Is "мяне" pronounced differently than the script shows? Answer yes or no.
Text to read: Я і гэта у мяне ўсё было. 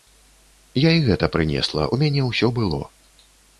no